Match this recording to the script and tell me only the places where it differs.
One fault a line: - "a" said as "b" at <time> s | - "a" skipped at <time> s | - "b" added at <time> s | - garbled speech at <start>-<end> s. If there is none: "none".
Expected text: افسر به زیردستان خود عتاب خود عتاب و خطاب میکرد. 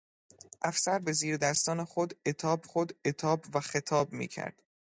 none